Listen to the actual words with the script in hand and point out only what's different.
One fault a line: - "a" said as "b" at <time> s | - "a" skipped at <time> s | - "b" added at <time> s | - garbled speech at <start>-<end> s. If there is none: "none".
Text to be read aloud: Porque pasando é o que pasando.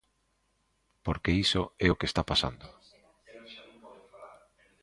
- "pasando" said as "iso" at 1.4 s
- "está" added at 2.1 s